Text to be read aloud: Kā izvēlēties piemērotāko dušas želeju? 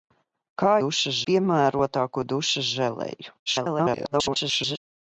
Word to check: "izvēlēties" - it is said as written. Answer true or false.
false